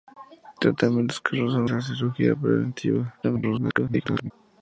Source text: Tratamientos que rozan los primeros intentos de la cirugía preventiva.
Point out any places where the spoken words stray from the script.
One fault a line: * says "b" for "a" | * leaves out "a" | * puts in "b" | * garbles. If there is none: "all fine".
* leaves out "los primeros intentos"
* garbles